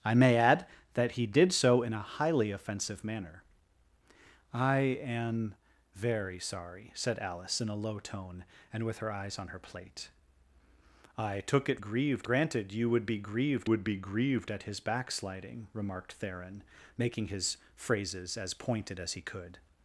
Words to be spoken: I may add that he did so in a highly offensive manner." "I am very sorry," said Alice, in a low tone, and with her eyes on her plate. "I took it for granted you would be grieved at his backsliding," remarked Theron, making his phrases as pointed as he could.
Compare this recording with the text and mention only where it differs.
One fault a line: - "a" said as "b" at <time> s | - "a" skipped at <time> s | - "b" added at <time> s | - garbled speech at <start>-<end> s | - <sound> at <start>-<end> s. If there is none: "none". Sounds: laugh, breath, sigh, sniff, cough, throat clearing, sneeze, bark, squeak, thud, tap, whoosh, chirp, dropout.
- "for" said as "grieved" at 11.8 s
- "would be grieved" added at 13.7 s